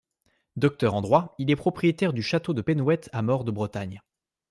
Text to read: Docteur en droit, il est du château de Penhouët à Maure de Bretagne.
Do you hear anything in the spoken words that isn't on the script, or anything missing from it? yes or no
yes